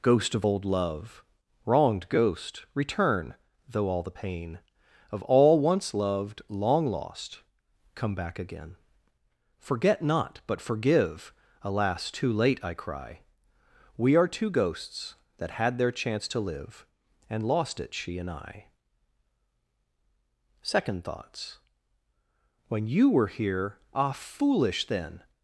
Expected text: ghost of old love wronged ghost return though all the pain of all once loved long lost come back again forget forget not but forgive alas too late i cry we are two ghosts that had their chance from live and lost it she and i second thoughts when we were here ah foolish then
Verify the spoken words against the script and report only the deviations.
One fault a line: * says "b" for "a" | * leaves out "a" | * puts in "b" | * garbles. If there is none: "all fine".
* leaves out "forget"
* says "to" for "from"
* says "you" for "we"